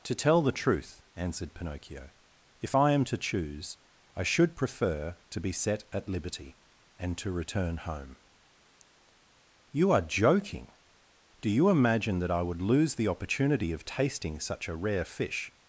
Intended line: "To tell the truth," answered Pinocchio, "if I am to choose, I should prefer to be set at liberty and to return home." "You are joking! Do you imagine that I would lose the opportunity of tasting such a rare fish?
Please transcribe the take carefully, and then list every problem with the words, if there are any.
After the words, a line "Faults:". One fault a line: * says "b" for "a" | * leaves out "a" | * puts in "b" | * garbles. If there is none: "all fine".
"To tell the truth," answered Pinocchio, "if I am to choose, I should prefer to be set at liberty and to return home." "You are joking! Do you imagine that I would lose the opportunity of tasting such a rare fish?
Faults:
all fine